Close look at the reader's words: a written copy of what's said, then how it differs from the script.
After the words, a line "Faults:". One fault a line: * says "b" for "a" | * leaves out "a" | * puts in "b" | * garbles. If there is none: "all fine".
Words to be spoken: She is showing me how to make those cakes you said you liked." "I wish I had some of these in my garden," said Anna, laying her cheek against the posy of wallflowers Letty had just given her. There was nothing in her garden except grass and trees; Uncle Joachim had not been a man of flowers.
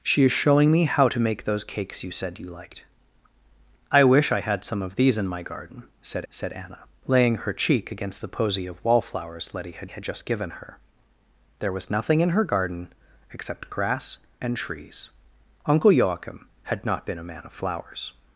She is showing me how to make those cakes you said you liked." "I wish I had some of these in my garden," said said Anna, laying her cheek against the posy of wallflowers Letty had had just given her. There was nothing in her garden except grass and trees; Uncle Joachim had not been a man of flowers.
Faults:
* puts in "said"
* puts in "had"